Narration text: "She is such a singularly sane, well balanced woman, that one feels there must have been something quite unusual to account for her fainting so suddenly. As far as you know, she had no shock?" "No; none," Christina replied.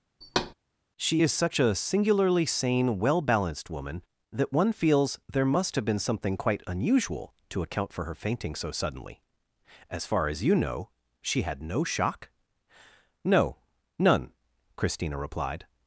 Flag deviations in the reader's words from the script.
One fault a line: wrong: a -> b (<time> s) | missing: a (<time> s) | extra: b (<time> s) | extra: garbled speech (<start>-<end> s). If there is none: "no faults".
no faults